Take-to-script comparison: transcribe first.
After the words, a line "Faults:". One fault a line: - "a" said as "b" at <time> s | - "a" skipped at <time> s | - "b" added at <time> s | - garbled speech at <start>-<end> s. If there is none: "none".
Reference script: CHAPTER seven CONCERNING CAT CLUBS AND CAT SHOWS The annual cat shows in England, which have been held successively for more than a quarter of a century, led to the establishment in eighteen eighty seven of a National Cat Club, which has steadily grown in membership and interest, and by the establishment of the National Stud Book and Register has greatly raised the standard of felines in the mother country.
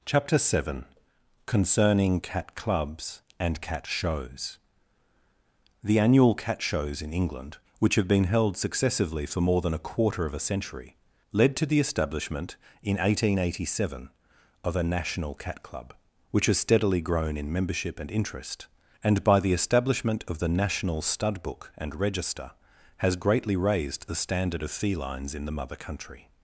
CHAPTER seven CONCERNING CAT CLUBS AND CAT SHOWS The annual cat shows in England, which have been held successively for more than a quarter of a century, led to the establishment in eighteen eighty seven of a National Cat Club, which has steadily grown in membership and interest, and by the establishment of the National Stud Book and Register has greatly raised the standard of felines in the mother country.
Faults:
none